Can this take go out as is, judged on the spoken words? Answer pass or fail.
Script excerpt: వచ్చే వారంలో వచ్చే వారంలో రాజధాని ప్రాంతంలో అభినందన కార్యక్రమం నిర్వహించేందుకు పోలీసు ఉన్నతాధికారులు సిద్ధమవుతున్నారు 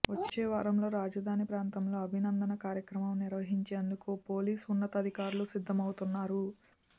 fail